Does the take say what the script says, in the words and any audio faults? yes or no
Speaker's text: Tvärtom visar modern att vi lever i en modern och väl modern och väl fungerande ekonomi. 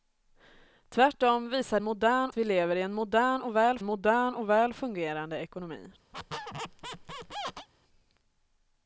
no